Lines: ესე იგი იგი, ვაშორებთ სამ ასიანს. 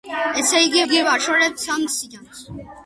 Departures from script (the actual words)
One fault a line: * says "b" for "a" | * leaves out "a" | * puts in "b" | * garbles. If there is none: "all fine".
all fine